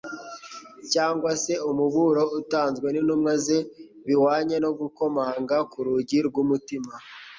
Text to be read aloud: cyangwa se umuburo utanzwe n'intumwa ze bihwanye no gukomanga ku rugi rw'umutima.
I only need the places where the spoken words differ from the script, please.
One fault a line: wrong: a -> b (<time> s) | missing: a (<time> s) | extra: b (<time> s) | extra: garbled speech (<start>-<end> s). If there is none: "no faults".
no faults